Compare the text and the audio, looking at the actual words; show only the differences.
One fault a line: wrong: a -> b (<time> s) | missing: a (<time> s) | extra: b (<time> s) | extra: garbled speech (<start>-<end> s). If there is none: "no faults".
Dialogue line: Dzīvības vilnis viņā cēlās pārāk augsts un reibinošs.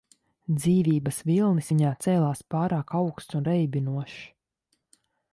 no faults